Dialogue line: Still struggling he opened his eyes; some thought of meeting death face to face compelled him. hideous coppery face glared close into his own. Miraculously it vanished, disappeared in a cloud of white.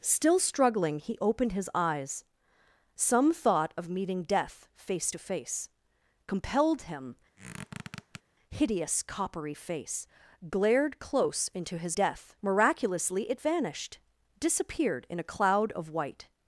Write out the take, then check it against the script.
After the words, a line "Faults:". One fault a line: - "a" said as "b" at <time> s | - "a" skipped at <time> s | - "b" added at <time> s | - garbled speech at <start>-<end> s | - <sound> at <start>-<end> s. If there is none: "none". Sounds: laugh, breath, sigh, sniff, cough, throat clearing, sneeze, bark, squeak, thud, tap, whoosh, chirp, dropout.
Still struggling he opened his eyes; some thought of meeting death face to face compelled him. hideous coppery face glared close into his death. Miraculously it vanished, disappeared in a cloud of white.
Faults:
- squeak at 7.4-8.2 s
- "own" said as "death" at 11.9 s